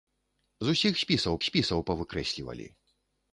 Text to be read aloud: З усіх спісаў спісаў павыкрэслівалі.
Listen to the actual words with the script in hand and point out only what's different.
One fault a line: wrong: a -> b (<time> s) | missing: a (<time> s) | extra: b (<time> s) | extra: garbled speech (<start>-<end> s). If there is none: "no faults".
no faults